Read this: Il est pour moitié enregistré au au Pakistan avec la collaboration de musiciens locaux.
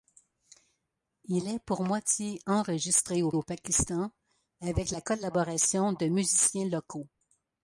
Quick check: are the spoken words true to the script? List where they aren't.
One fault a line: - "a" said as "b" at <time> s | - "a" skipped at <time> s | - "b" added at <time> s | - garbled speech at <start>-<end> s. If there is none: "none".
none